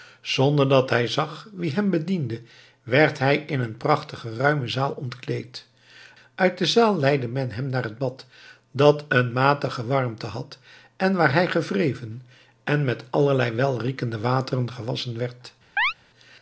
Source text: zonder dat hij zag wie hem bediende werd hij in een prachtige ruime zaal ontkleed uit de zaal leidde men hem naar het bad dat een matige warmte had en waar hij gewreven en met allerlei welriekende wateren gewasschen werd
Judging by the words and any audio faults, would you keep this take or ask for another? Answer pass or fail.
fail